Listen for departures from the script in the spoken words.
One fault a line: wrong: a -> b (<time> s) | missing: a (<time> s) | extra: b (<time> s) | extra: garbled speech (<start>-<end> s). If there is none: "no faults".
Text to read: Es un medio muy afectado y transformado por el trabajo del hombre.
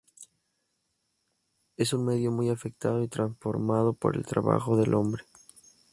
no faults